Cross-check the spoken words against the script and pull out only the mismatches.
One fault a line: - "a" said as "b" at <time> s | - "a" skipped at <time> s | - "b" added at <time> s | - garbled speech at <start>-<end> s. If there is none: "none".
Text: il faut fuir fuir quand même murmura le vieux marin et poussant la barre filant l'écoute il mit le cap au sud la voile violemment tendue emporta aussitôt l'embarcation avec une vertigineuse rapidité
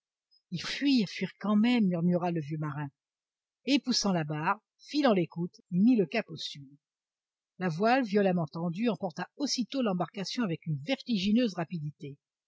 - "faut" skipped at 0.6 s